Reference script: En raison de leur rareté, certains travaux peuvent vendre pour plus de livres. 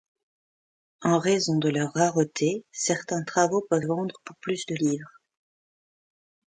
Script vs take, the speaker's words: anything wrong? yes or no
no